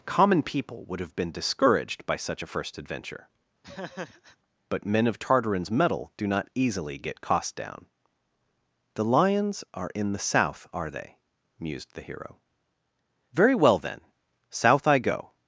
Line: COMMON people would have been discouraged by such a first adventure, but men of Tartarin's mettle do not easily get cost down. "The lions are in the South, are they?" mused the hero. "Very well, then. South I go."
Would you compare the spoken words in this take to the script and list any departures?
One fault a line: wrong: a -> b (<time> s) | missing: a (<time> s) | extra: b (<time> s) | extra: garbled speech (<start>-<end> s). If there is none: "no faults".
no faults